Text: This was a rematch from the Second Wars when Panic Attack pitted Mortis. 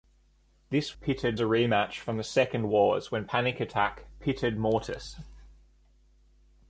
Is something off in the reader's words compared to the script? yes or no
yes